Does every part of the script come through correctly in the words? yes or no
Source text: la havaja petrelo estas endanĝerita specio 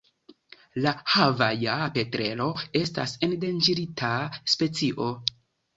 yes